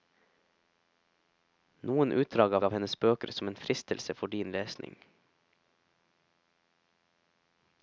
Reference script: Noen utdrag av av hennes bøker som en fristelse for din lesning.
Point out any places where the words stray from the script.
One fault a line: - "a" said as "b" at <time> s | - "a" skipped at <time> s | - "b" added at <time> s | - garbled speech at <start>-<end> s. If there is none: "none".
none